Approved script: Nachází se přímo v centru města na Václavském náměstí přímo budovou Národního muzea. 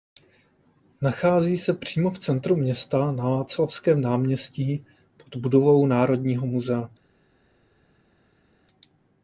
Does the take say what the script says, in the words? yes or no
no